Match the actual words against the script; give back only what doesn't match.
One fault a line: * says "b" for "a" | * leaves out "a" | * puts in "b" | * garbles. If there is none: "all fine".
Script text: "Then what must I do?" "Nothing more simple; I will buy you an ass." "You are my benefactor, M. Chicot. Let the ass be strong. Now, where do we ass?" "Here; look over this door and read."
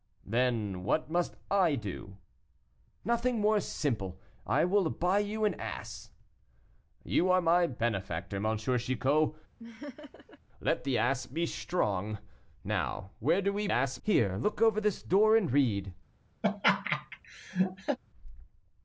all fine